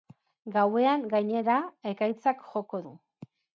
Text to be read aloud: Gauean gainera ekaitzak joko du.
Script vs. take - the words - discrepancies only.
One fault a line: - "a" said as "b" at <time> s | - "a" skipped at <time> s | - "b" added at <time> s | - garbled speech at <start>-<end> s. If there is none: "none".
none